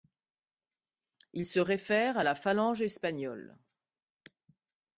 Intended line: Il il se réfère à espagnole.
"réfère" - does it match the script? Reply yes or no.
yes